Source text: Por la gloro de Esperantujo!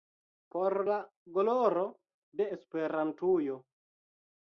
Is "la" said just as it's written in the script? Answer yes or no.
yes